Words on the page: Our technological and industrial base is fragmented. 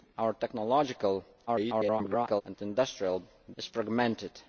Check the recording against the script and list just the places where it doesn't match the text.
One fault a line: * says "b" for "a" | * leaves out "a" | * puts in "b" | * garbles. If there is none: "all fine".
* garbles
* leaves out "base"